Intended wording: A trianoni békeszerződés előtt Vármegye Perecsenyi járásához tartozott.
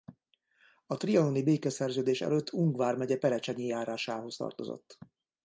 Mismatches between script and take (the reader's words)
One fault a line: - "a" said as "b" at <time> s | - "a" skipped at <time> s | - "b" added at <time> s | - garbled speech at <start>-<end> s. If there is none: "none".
- "Ung" added at 2.5 s